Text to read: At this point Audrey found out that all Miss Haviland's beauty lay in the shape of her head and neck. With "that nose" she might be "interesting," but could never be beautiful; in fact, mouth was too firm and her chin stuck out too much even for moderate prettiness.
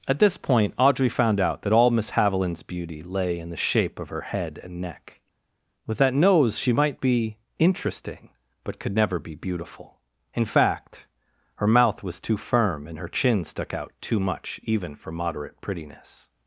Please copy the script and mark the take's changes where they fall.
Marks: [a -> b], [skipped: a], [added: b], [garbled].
At this point Audrey found out that all Miss Haviland's beauty lay in the shape of her head and neck. With "that nose" she might be "interesting," but could never be beautiful; in fact, [added: her] mouth was too firm and her chin stuck out too much even for moderate prettiness.